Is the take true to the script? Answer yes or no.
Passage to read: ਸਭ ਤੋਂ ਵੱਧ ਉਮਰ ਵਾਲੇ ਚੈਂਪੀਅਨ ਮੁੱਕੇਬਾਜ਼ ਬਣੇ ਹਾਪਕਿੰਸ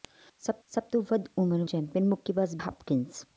no